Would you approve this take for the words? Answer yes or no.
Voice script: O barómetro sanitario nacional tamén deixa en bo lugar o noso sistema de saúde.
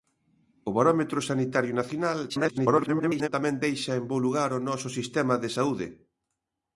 no